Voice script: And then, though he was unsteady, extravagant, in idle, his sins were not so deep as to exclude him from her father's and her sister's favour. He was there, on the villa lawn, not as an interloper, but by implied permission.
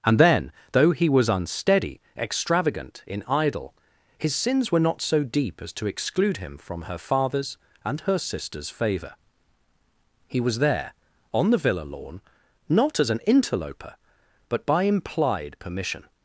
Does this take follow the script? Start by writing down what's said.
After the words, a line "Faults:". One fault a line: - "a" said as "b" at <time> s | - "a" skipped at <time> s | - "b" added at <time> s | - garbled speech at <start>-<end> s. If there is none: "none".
And then, though he was unsteady, extravagant, in idle, his sins were not so deep as to exclude him from her father's and her sister's favour. He was there, on the villa lawn, not as an interloper, but by implied permission.
Faults:
none